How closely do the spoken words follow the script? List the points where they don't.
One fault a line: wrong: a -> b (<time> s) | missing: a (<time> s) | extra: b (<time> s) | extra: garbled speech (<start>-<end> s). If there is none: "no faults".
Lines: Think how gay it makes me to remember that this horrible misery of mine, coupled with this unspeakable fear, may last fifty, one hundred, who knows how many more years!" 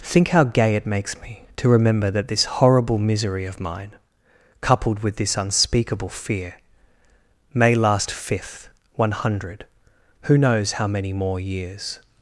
wrong: fifty -> fifth (8.1 s)